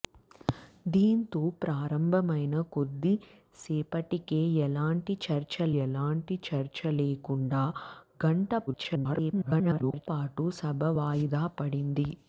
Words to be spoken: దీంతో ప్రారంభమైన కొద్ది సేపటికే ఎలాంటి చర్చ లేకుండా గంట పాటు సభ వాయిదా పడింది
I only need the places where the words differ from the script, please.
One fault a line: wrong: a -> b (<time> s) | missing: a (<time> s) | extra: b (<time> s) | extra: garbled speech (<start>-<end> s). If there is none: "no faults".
extra: ఎలాంటి చర్చ (5.8 s)
extra: garbled speech (8.7-10.1 s)